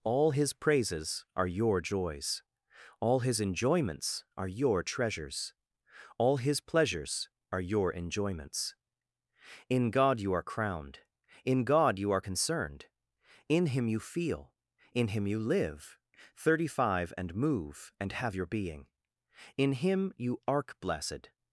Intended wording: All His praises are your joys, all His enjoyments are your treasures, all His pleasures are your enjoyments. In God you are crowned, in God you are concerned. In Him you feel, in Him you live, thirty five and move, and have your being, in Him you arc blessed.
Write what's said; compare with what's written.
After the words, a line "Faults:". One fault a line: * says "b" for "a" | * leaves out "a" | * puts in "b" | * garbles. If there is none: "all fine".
All His praises are your joys, all His enjoyments are your treasures, all His pleasures are your enjoyments. In God you are crowned, in God you are concerned. In Him you feel, in Him you live, thirty five and move, and have your being, in Him you arc blessed.
Faults:
all fine